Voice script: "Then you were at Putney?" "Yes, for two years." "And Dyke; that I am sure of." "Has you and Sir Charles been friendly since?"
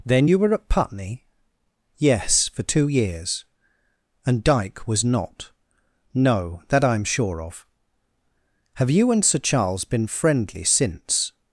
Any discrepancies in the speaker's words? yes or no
yes